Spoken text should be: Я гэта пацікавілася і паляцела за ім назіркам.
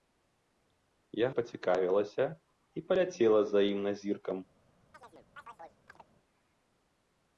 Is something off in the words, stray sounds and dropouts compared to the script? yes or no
yes